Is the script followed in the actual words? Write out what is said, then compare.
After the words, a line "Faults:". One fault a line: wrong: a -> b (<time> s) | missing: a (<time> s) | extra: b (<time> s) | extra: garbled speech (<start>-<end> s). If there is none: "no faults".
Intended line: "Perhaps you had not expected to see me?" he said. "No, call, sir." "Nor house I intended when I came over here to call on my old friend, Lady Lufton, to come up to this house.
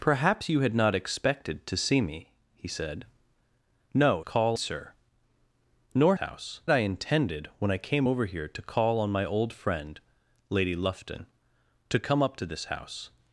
"Perhaps you had not expected to see me?" he said. "No, call, sir." "Nor house I intended when I came over here to call on my old friend, Lady Lufton, to come up to this house.
Faults:
no faults